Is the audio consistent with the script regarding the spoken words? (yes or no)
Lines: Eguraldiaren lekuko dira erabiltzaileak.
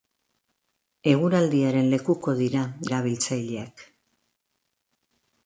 yes